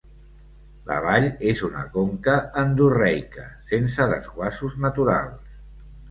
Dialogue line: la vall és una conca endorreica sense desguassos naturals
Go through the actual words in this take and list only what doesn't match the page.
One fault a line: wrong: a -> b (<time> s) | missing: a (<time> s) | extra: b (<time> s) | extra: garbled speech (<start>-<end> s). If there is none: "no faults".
no faults